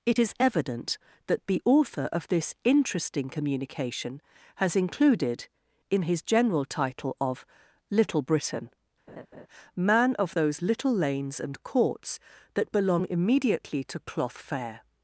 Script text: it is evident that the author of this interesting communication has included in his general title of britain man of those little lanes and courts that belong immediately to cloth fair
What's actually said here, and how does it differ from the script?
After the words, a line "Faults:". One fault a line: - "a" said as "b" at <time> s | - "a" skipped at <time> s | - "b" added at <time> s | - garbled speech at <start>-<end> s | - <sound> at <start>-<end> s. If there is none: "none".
it is evident that the author of this interesting communication has included in his general title of little britain man of those little lanes and courts that belong immediately to cloth fair
Faults:
- "little" added at 7.9 s
- laugh at 9.1-9.5 s